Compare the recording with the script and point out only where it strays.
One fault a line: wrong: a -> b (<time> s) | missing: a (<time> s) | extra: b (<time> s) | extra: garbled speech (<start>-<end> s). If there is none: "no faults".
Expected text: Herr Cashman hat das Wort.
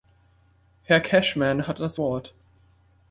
no faults